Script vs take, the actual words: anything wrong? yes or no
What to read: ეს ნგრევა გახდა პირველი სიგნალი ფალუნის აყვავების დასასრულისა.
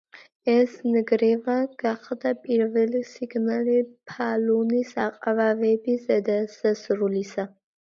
no